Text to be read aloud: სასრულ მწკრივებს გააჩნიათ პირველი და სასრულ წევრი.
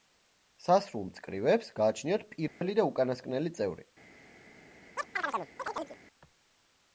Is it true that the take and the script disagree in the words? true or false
true